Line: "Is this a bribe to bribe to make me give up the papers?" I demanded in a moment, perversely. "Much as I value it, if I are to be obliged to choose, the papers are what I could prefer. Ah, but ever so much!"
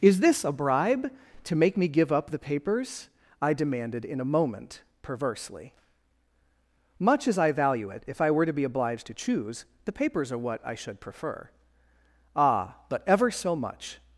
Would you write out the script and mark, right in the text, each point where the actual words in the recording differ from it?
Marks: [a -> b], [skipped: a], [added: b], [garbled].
"Is this a bribe to [skipped: bribe to] make me give up the papers?" I demanded in a moment, perversely. "Much as I value it, if I [are -> were] to be obliged to choose, the papers are what I [could -> should] prefer. Ah, but ever so much!"